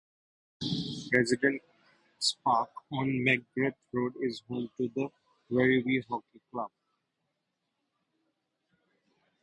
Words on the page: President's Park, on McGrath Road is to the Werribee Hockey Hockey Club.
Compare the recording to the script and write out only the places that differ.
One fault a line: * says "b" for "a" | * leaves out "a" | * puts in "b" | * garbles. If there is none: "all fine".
* puts in "home"
* leaves out "Hockey"